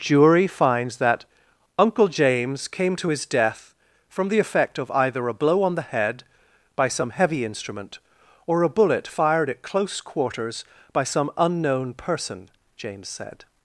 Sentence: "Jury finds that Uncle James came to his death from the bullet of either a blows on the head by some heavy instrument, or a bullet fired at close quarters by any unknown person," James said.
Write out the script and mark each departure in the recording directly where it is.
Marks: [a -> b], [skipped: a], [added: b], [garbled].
"Jury finds that Uncle James came to his death from the [bullet -> effect] of either a [blows -> blow] on the head by some heavy instrument, or a bullet fired at close quarters by [any -> some] unknown person," James said.